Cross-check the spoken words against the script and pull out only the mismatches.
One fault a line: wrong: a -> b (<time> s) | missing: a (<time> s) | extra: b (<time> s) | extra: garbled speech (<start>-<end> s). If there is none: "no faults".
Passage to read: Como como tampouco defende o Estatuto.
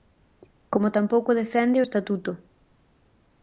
missing: como (0.9 s)